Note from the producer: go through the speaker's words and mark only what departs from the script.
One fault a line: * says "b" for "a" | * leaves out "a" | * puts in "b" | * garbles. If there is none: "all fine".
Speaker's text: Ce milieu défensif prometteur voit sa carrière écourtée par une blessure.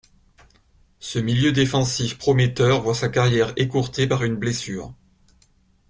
all fine